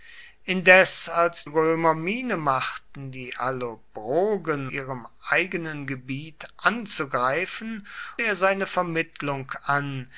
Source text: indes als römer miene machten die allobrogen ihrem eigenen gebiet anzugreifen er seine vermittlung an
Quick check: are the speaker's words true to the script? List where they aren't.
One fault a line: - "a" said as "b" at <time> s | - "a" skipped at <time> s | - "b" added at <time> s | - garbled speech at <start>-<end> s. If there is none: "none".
none